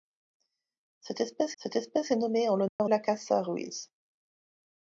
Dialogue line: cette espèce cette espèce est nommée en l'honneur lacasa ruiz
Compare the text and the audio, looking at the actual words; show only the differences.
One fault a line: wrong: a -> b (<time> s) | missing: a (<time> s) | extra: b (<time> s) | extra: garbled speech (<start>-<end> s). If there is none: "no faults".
no faults